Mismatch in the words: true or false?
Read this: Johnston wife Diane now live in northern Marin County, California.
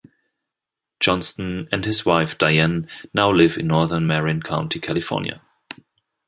true